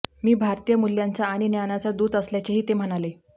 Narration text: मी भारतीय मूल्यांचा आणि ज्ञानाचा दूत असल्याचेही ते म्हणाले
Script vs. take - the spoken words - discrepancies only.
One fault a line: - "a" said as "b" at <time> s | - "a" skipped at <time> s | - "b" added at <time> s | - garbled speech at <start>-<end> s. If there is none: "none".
none